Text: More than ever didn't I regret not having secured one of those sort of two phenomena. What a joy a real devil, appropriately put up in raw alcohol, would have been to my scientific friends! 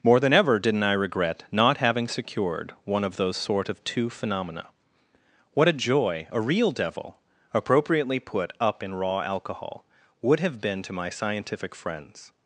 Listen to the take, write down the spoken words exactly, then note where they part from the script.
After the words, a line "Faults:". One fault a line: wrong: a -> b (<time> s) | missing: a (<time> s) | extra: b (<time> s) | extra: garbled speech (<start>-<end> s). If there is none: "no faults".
More than ever didn't I regret not having secured one of those sort of two phenomena. What a joy a real devil, appropriately put up in raw alcohol, would have been to my scientific friends!
Faults:
no faults